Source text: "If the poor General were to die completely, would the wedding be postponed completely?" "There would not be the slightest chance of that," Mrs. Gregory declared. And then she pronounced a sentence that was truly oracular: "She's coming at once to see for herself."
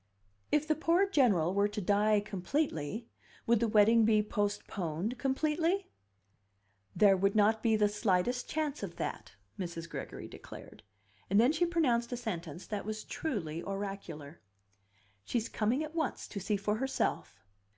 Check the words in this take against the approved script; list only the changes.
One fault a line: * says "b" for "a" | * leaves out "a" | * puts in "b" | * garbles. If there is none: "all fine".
all fine